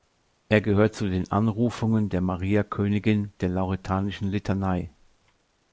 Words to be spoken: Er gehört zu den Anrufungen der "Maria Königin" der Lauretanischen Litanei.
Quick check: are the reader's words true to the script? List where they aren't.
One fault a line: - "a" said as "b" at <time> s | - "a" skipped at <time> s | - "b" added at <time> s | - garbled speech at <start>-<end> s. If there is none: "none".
none